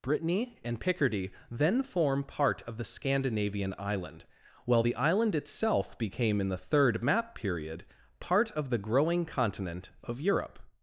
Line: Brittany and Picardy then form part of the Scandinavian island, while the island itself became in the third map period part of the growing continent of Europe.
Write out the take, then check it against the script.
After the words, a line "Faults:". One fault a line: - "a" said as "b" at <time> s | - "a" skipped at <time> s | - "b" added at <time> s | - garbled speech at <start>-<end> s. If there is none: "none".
Brittany and Picardy then form part of the Scandinavian island, while the island itself became in the third map period part of the growing continent of Europe.
Faults:
none